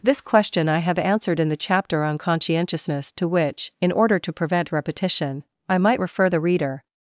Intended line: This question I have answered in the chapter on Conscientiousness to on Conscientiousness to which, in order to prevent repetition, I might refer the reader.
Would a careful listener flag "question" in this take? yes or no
no